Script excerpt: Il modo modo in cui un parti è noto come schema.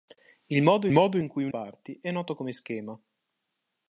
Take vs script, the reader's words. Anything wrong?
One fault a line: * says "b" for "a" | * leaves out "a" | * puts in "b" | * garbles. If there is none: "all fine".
all fine